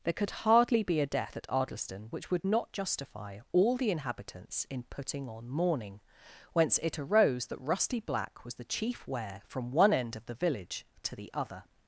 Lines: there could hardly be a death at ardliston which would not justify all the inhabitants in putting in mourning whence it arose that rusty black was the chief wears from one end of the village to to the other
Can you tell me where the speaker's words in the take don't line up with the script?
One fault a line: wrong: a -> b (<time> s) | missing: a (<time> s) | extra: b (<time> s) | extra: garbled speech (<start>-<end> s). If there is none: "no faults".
wrong: in -> on (5.3 s)
wrong: wears -> wear (9.1 s)
missing: to (11.1 s)